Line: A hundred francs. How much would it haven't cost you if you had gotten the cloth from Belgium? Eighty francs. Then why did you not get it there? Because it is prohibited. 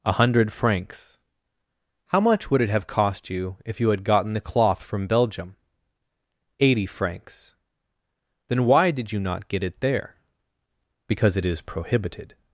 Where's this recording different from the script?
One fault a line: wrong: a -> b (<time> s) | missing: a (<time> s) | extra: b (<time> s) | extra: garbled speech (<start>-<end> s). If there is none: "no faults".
wrong: haven't -> have (2.7 s)